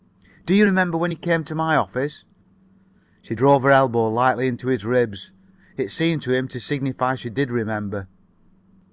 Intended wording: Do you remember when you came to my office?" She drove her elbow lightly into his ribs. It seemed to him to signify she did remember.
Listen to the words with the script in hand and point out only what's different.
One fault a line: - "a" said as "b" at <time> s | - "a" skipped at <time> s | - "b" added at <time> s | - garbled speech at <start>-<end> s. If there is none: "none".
none